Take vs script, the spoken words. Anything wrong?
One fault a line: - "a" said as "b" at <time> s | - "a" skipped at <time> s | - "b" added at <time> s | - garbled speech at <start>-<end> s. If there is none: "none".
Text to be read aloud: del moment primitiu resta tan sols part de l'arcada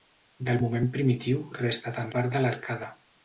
- "sols" skipped at 2.1 s